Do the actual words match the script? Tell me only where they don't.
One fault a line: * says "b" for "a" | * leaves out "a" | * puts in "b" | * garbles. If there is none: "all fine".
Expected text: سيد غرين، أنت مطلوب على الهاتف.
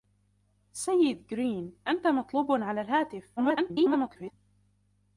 * garbles